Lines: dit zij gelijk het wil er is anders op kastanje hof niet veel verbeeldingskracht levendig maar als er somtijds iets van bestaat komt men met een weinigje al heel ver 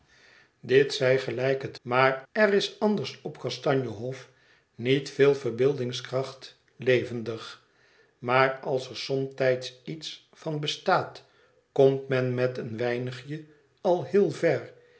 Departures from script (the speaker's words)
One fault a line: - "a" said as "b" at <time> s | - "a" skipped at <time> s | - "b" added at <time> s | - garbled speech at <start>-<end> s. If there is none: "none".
- "wil" said as "maar" at 1.8 s